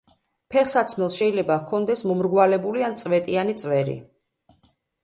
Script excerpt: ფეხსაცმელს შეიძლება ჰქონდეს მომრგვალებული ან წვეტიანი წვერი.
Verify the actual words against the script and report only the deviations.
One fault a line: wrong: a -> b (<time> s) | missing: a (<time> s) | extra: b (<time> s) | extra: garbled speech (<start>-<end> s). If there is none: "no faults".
no faults